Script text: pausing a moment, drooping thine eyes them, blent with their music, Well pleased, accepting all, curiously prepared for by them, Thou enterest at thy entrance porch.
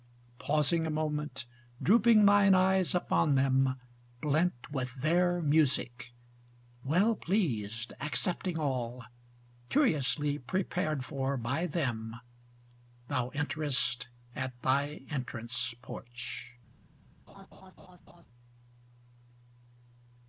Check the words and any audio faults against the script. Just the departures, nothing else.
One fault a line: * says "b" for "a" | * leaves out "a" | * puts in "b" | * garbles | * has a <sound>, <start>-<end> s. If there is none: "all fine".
* puts in "upon"
* has a laugh, 17.3-18.3 s